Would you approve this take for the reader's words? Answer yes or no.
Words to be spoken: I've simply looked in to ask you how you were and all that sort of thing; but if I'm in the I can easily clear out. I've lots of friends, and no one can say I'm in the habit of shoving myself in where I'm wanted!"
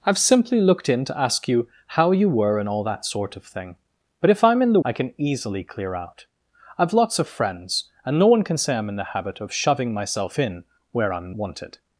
yes